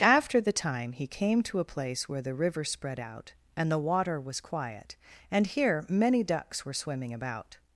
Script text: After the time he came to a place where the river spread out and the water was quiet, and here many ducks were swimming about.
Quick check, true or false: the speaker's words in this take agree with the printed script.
true